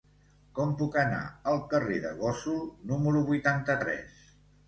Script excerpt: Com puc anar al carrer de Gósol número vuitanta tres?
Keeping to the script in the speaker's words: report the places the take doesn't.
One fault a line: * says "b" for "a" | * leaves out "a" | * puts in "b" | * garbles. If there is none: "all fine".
all fine